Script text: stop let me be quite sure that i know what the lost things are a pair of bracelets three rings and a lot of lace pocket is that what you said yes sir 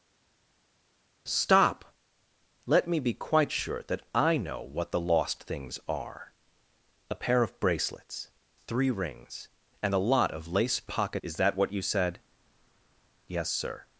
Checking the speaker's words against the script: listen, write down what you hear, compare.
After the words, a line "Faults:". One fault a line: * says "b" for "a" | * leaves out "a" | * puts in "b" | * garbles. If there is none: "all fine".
stop let me be quite sure that i know what the lost things are a pair of bracelets three rings and a lot of lace pocket is that what you said yes sir
Faults:
all fine